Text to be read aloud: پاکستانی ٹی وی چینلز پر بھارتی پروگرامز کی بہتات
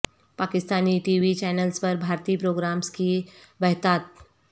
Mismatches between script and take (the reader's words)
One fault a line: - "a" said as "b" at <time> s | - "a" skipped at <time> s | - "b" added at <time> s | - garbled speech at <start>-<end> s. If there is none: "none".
none